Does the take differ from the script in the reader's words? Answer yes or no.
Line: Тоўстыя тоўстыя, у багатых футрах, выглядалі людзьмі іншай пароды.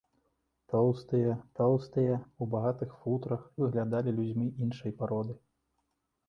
no